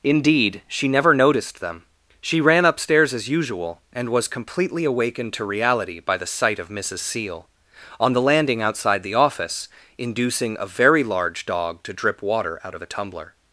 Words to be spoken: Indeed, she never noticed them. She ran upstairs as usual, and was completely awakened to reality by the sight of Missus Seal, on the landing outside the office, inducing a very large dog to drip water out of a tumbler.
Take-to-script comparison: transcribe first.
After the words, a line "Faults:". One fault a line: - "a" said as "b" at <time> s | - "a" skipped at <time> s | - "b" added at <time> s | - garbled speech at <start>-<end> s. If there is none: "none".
Indeed, she never noticed them. She ran upstairs as usual, and was completely awakened to reality by the sight of Missus Seal, on the landing outside the office, inducing a very large dog to drip water out of a tumbler.
Faults:
none